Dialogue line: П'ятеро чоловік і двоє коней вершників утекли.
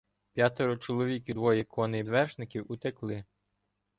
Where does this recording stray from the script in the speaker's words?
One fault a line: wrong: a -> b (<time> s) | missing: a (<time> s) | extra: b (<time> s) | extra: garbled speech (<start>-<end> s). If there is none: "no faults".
no faults